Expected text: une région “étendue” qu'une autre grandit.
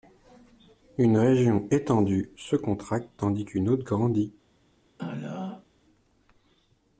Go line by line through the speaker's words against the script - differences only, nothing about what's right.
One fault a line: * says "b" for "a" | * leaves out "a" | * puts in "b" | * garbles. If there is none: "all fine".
* puts in "se contracte tandis"